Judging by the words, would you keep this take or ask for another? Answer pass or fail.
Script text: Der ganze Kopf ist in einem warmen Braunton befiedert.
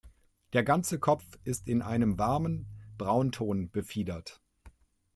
pass